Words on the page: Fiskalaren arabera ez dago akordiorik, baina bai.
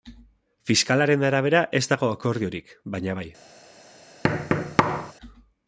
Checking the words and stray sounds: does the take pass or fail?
fail